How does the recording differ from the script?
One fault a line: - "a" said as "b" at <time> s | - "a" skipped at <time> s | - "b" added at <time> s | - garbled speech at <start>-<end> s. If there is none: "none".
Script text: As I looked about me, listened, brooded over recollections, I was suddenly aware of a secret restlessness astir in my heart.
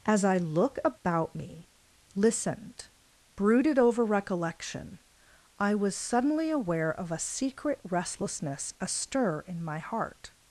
- "looked" said as "look" at 0.4 s
- "recollections" said as "recollection" at 4.0 s